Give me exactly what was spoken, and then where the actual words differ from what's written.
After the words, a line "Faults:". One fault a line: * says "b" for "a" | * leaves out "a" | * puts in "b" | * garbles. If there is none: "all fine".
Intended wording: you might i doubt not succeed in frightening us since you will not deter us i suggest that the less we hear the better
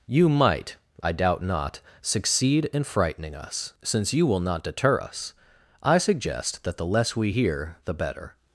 you might i doubt not succeed in frightening us since you will not deter us i suggest that the less we hear the better
Faults:
all fine